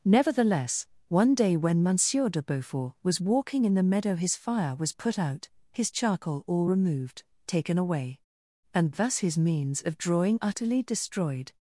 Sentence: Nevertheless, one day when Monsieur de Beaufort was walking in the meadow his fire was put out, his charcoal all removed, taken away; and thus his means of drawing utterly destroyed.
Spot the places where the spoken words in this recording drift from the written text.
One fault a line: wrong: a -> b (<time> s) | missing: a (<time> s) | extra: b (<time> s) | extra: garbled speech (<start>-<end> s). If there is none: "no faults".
no faults